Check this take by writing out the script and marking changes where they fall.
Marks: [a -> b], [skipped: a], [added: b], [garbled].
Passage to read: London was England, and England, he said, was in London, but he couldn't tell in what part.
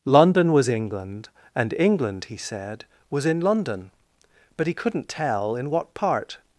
London was England, and England, he said, was in London, but he couldn't tell in what part.